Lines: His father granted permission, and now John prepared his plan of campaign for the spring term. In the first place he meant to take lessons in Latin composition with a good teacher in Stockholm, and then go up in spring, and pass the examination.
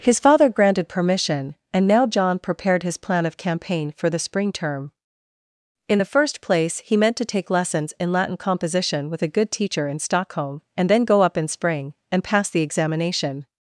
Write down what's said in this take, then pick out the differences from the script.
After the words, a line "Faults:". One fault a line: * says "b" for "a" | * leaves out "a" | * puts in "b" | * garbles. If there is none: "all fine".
His father granted permission, and now John prepared his plan of campaign for the spring term. In the first place he meant to take lessons in Latin composition with a good teacher in Stockholm, and then go up in spring, and pass the examination.
Faults:
all fine